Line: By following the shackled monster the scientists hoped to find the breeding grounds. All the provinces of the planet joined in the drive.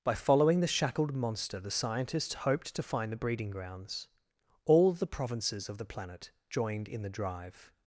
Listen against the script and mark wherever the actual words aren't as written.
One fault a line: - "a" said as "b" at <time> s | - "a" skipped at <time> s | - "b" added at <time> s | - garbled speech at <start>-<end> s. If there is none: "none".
none